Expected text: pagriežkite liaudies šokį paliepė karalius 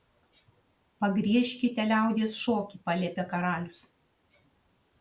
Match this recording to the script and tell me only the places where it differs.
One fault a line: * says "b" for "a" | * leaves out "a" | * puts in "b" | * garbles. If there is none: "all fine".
all fine